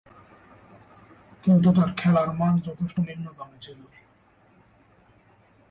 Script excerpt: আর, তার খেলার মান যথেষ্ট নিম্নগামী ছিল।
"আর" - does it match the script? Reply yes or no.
no